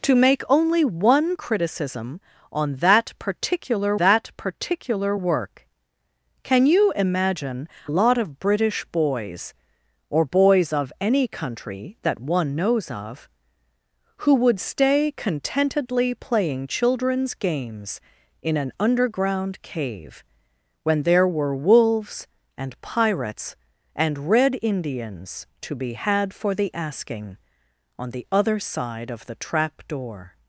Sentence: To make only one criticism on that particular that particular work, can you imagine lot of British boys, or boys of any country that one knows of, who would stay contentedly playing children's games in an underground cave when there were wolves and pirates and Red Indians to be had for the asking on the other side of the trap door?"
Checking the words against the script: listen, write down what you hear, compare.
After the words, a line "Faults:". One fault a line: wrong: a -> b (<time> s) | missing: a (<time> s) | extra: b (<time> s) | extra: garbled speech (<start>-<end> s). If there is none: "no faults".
To make only one criticism on that particular that particular work, can you imagine lot of British boys, or boys of any country that one knows of, who would stay contentedly playing children's games in an underground cave when there were wolves and pirates and Red Indians to be had for the asking on the other side of the trap door?"
Faults:
no faults